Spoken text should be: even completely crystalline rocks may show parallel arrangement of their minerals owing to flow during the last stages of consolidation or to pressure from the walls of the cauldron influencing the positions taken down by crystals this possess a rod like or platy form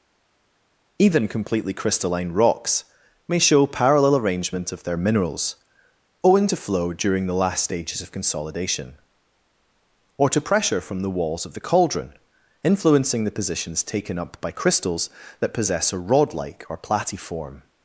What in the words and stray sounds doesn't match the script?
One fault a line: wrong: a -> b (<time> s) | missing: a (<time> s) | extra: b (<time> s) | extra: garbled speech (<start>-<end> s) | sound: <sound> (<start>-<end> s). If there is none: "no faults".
wrong: down -> up (14.2 s)
wrong: this -> that (15.4 s)